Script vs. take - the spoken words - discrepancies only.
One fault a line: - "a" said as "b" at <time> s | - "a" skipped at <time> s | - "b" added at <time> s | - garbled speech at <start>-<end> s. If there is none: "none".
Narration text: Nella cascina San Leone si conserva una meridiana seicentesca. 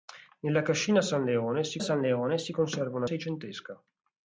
- "San Leone si" added at 1.8 s
- "meridiana" skipped at 3.1 s